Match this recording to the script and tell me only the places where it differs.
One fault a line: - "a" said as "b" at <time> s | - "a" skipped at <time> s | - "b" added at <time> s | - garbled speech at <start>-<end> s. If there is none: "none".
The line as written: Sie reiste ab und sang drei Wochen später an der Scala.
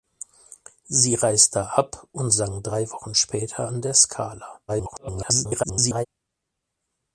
- garbled speech at 4.7-6.1 s